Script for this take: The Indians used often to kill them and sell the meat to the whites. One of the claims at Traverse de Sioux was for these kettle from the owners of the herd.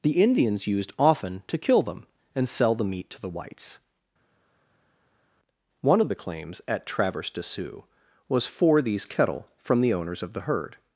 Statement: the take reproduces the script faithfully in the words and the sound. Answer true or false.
true